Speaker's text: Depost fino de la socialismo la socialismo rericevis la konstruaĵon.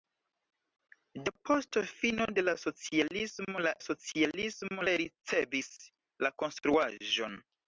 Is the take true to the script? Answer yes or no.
yes